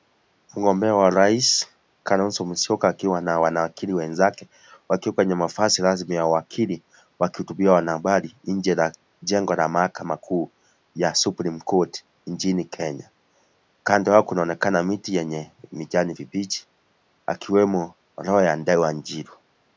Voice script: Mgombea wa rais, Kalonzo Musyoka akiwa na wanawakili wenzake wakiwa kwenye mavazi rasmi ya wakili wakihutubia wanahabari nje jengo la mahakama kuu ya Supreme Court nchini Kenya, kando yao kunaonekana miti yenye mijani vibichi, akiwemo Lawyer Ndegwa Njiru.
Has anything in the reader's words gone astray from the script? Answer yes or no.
yes